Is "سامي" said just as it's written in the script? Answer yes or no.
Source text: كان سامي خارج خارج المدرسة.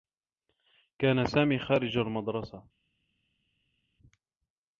yes